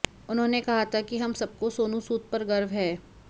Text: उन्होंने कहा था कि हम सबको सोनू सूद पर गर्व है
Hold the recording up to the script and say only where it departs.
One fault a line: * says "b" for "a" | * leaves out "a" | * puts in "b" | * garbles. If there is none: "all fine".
all fine